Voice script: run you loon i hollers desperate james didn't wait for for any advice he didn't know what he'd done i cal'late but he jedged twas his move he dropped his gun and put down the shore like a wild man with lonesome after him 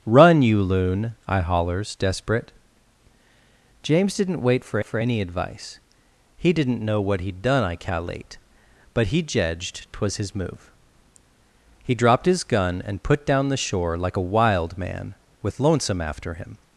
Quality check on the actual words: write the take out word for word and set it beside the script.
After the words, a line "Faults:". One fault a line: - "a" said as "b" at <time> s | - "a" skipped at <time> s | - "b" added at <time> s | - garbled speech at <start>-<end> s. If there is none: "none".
run you loon i hollers desperate james didn't wait for for any advice he didn't know what he'd done i cal'late but he jedged twas his move he dropped his gun and put down the shore like a wild man with lonesome after him
Faults:
none